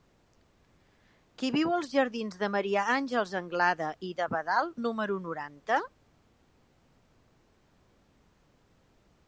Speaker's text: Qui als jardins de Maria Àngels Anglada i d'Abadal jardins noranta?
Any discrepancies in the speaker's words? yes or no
yes